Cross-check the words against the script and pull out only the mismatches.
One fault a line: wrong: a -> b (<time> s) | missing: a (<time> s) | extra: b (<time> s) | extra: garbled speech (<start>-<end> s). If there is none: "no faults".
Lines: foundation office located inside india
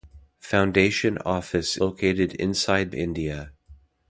no faults